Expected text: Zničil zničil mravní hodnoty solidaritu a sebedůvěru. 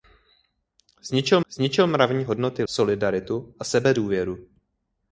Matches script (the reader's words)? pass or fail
pass